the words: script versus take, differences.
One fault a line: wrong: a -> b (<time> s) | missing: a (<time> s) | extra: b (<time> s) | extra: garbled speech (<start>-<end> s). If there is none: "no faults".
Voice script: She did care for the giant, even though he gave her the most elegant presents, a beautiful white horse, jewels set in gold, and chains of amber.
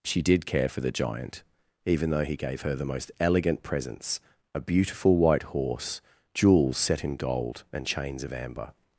no faults